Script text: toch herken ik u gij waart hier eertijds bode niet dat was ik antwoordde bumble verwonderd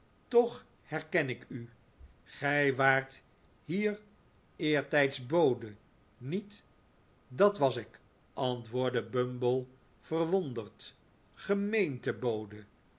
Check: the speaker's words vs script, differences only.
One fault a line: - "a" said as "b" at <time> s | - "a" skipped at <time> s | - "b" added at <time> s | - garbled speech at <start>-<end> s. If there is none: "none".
none